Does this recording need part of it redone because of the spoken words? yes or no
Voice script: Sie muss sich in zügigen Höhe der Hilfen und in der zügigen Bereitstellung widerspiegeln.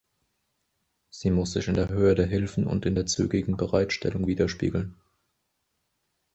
yes